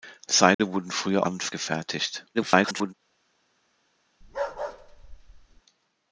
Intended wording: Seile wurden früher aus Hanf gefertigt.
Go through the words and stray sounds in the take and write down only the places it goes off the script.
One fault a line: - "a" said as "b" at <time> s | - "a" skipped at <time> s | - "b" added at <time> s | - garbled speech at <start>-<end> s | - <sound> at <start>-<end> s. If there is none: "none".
- dropout at 0.5-0.6 s
- "aus" skipped at 1.3 s
- garbled speech at 2.3-2.9 s
- bark at 4.2-5.6 s